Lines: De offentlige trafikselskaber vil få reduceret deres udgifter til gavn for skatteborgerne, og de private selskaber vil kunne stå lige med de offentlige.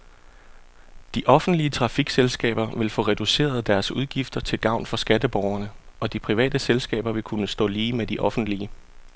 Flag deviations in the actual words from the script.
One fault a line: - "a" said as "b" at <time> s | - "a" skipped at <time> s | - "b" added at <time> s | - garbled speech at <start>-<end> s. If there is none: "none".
none